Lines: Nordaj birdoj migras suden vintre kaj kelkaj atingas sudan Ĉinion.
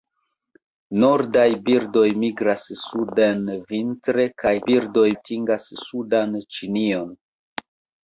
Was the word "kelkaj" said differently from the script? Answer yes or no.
yes